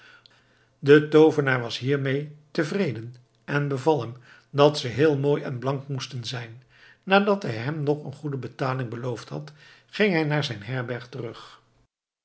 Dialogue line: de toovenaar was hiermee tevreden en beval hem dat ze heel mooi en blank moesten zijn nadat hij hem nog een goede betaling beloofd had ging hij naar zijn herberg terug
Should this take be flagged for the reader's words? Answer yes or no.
no